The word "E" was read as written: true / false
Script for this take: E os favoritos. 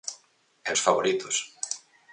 true